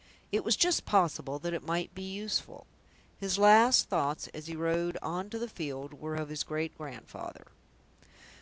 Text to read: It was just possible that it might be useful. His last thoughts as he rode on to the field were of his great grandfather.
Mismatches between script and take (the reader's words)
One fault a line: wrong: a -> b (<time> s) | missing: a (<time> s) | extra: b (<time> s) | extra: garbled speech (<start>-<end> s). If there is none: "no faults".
no faults